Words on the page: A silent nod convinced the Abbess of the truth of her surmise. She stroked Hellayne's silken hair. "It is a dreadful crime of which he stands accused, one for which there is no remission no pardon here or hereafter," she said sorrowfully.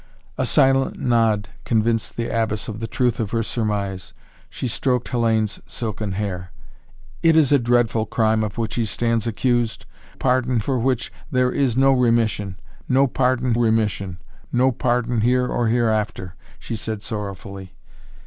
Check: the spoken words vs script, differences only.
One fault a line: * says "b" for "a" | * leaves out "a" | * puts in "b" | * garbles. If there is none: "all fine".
* says "pardon" for "one"
* puts in "remission no pardon"